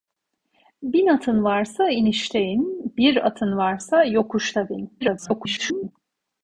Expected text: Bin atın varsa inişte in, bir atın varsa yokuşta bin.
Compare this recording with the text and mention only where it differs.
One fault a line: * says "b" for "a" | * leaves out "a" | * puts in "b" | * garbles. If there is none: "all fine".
* garbles